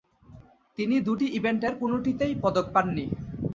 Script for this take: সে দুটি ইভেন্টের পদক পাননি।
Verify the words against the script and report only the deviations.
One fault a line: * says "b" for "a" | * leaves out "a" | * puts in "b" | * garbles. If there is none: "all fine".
* says "তিনি" for "সে"
* puts in "কোনটিতেই"